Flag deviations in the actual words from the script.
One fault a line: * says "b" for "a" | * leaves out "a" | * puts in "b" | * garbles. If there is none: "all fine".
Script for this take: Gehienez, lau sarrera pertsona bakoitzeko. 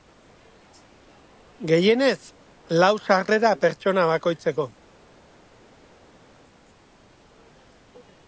all fine